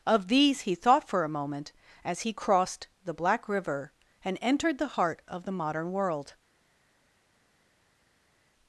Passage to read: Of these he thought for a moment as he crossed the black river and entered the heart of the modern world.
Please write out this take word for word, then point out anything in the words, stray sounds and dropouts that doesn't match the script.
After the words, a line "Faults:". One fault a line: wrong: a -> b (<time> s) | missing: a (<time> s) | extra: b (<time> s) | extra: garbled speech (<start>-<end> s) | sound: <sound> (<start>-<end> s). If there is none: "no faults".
Of these he thought for a moment as he crossed the black river and entered the heart of the modern world.
Faults:
no faults